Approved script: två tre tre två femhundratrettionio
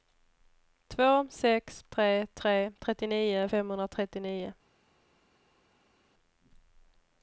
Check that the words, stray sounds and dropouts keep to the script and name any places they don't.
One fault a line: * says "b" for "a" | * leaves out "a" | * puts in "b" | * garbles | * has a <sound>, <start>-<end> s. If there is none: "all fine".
* puts in "sex"
* says "trettionio" for "två"